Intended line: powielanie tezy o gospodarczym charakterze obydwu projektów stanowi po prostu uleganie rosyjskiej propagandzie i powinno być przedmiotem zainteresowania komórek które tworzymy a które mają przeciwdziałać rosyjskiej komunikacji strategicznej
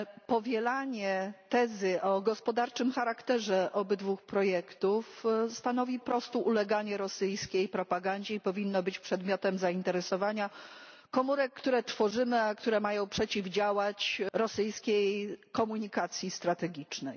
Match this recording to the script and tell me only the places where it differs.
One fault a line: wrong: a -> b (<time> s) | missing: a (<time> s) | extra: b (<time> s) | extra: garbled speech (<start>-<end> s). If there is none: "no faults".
missing: po (6.0 s)